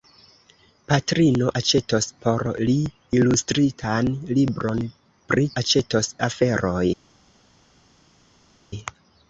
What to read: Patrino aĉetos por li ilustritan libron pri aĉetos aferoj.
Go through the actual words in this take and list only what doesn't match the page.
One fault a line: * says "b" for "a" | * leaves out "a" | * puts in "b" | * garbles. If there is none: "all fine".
all fine